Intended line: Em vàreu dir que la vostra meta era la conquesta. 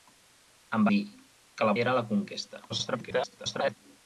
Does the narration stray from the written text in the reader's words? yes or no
yes